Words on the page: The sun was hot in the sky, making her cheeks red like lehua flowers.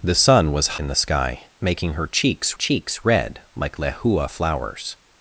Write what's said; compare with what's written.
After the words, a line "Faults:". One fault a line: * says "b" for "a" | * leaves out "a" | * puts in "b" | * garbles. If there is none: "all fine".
The sun was in the sky, making her cheeks cheeks red like lehua flowers.
Faults:
* leaves out "hot"
* puts in "cheeks"